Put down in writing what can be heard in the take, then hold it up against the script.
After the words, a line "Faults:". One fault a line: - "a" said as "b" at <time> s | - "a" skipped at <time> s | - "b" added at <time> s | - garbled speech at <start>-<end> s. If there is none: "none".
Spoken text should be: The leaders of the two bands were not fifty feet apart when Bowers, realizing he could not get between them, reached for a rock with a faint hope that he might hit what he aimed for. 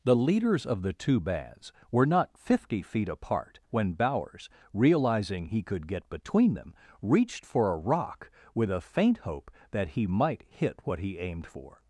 The leaders of the two bands were not fifty feet apart when Bowers, realizing he could get between them, reached for a rock with a faint hope that he might hit what he aimed for.
Faults:
- "not" skipped at 5.9 s